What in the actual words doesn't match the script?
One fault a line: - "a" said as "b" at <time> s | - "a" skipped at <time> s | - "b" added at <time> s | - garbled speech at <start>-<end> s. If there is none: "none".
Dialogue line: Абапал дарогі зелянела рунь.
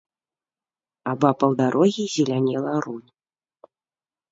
none